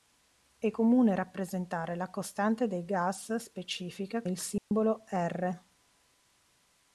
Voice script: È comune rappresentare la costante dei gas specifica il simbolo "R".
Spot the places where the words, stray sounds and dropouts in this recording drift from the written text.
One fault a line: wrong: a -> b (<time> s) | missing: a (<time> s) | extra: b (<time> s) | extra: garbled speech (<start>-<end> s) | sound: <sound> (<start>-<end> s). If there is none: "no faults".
sound: dropout (4.6-4.7 s)